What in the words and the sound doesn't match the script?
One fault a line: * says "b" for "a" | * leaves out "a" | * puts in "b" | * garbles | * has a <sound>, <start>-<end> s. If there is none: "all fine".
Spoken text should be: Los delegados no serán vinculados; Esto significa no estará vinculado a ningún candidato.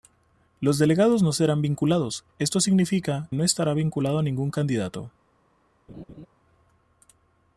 * has a laugh, 5.9-6.3 s